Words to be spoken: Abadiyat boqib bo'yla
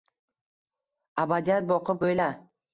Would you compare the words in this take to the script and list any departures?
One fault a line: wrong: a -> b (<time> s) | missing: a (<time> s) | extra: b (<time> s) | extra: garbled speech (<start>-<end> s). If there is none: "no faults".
no faults